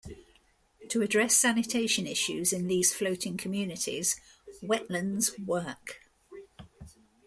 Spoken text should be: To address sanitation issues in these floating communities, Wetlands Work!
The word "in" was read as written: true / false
true